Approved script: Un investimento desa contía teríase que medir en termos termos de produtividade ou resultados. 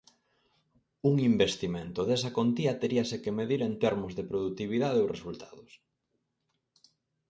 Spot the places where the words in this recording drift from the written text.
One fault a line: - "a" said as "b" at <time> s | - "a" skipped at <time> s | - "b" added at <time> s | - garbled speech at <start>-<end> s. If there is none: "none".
- "termos" skipped at 4.1 s